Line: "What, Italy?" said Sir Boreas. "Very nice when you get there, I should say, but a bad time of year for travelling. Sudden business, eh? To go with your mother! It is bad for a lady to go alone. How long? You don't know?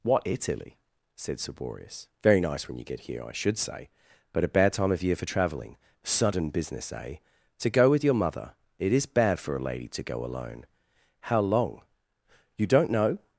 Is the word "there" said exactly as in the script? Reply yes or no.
no